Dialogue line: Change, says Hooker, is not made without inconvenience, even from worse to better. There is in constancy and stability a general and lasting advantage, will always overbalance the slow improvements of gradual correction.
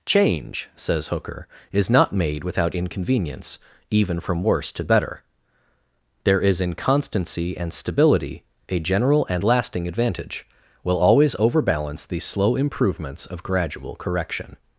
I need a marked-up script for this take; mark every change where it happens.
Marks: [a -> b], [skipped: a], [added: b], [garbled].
Change, says Hooker, is not made without inconvenience, even from worse to better. There is in constancy and stability a general and lasting advantage, will always overbalance the slow improvements of gradual correction.